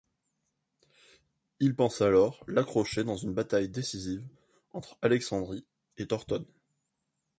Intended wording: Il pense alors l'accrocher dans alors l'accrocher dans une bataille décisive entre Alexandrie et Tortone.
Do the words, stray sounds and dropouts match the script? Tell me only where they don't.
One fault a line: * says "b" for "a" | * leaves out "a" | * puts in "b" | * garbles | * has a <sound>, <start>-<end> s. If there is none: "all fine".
* leaves out "alors l'accrocher dans"